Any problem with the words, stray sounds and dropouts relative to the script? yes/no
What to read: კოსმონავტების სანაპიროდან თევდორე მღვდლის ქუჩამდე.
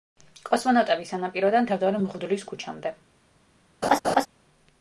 yes